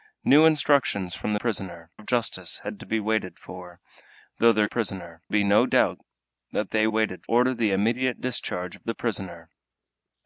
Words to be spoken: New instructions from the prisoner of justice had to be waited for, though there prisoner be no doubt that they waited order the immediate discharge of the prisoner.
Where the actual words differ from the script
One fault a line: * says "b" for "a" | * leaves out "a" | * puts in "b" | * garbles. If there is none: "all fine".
all fine